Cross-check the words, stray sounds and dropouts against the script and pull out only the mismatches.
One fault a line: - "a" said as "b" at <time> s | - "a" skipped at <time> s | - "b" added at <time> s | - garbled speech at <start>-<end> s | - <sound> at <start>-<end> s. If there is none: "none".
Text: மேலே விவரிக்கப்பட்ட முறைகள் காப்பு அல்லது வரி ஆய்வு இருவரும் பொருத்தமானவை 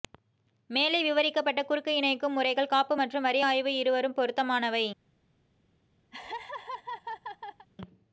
- "குறுக்கு இணைக்கும்" added at 1.6 s
- "அல்லது" said as "மற்றும்" at 3.0 s
- laugh at 6.1-7.7 s